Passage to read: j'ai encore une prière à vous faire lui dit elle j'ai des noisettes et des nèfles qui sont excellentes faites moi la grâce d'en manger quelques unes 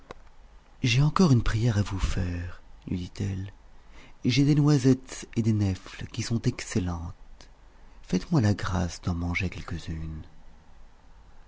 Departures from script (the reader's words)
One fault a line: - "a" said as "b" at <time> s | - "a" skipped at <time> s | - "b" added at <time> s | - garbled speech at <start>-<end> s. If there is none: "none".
none